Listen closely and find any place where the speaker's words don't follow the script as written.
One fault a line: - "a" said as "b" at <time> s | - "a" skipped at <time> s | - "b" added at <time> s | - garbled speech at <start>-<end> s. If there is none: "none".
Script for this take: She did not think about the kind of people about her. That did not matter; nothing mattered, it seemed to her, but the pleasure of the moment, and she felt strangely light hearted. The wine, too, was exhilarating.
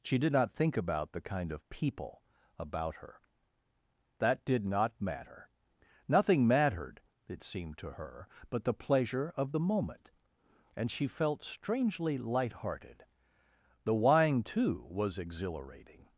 none